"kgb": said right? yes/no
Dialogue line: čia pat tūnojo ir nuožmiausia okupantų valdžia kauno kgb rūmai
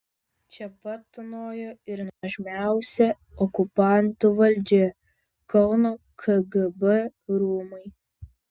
yes